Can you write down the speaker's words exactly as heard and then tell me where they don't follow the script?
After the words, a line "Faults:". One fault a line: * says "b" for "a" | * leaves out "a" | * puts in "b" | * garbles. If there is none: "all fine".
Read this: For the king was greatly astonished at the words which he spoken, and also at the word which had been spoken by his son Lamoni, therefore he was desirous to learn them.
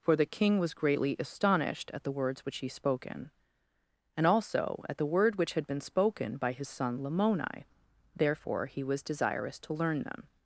For the king was greatly astonished at the words which he spoken, and also at the word which had been spoken by his son Lamoni, therefore he was desirous to learn them.
Faults:
all fine